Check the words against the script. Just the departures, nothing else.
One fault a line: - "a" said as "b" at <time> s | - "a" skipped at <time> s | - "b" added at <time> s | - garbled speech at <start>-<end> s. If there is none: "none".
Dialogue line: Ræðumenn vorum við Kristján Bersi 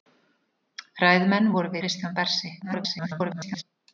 - "við" skipped at 1.8 s
- garbled speech at 2.6-3.6 s